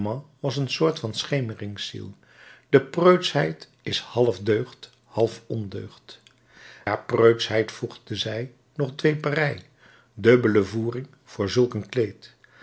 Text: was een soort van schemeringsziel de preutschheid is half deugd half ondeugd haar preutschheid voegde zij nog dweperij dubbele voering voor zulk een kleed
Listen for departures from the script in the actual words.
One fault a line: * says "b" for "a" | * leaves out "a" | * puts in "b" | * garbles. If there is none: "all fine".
all fine